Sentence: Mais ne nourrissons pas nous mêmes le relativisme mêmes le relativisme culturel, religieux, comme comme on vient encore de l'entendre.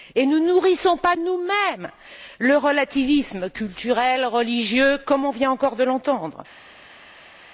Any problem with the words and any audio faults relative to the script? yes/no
yes